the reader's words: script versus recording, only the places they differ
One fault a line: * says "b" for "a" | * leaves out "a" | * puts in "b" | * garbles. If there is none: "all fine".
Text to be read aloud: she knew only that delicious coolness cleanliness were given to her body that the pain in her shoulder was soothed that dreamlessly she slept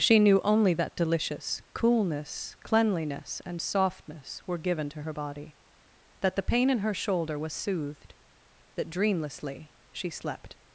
* puts in "and softness"